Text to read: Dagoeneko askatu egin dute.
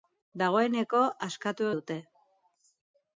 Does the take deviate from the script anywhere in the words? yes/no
yes